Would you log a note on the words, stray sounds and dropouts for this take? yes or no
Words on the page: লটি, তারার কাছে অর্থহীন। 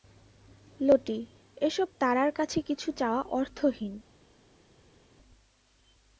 yes